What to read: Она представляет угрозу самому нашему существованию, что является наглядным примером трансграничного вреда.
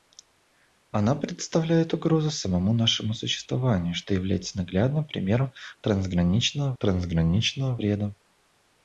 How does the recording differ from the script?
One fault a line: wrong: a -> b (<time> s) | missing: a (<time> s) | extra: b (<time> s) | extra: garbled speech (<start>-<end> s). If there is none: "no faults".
extra: трансграничного (6.8 s)